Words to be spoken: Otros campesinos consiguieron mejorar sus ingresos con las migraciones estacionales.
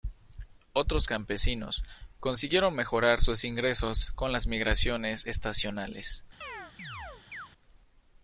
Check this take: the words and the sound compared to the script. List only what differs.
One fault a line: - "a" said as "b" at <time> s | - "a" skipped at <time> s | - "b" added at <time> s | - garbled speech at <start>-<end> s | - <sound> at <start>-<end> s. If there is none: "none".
- chirp at 6.4-7.5 s